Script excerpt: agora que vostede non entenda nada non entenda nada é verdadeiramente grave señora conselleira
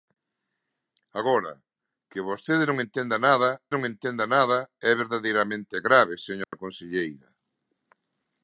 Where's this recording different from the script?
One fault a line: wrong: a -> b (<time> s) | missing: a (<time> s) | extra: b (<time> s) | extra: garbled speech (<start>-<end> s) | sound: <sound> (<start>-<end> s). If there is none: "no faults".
sound: dropout (6.4-6.5 s)